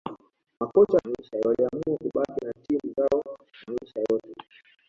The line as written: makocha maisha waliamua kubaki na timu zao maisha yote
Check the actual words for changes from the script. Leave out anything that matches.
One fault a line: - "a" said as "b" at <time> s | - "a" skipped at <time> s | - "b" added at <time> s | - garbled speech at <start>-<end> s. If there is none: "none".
none